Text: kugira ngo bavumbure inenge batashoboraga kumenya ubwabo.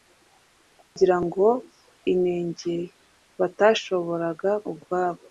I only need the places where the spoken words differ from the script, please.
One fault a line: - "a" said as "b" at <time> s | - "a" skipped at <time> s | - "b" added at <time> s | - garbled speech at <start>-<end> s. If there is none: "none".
- "bavumbure" skipped at 1.4 s
- "kumenya" skipped at 4.5 s